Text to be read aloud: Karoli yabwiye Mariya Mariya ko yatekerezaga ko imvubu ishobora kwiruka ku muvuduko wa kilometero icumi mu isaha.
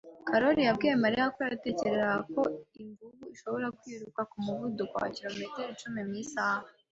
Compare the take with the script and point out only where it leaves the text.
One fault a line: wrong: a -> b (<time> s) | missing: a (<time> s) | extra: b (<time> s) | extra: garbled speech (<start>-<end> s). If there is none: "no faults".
missing: Mariya (1.2 s)